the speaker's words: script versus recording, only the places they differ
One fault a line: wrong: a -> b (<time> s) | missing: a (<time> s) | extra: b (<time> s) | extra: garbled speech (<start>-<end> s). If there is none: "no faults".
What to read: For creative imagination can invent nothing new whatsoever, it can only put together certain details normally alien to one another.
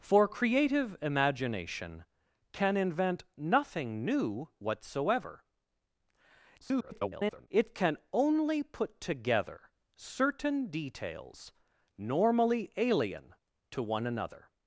extra: garbled speech (6.6-7.5 s)